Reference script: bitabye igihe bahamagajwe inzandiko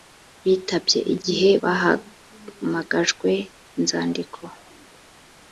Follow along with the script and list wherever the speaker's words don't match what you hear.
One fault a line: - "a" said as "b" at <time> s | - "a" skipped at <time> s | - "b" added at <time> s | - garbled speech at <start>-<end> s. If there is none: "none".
none